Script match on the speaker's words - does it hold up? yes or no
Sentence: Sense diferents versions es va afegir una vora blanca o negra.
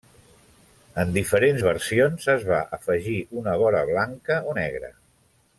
no